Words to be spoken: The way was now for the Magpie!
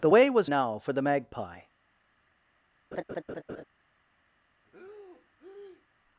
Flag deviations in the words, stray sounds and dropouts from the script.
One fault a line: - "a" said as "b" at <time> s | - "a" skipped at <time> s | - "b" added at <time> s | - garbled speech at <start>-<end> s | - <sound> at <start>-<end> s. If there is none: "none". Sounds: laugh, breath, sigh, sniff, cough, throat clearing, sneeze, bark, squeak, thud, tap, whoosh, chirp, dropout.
- laugh at 2.9-3.6 s
- breath at 4.6-5.9 s